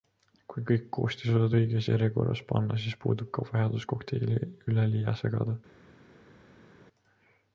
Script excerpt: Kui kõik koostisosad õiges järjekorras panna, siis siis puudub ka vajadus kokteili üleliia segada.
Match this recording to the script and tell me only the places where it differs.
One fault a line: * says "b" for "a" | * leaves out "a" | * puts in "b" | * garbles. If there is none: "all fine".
* leaves out "siis"